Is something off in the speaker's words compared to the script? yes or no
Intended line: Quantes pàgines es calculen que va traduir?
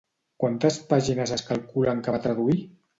no